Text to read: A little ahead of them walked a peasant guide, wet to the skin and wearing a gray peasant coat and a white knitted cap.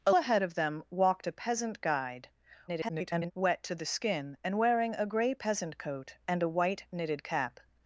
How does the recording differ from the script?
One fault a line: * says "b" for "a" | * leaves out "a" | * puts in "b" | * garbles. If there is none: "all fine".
* leaves out "little"
* garbles